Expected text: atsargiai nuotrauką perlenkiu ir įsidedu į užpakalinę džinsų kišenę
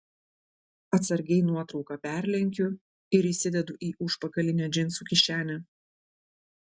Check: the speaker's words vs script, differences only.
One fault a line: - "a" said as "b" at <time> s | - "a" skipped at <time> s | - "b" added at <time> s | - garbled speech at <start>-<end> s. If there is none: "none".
none